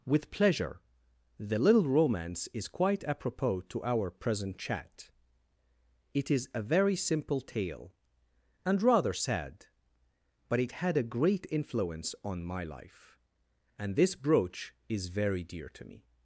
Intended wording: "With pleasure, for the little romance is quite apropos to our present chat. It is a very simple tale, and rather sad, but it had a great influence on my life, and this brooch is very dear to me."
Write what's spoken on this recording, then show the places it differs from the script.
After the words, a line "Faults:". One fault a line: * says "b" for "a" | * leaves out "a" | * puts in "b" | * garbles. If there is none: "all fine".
"With pleasure, the little romance is quite apropos to our present chat. It is a very simple tale, and rather sad, but it had a great influence on my life, and this brooch is very dear to me."
Faults:
* leaves out "for"